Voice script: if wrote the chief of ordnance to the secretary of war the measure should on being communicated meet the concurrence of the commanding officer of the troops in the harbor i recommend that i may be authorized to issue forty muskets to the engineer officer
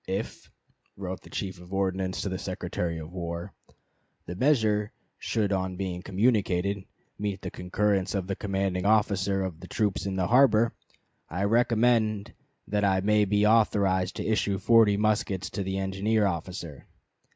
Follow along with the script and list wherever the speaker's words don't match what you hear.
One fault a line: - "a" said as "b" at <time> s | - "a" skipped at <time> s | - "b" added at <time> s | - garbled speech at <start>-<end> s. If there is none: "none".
none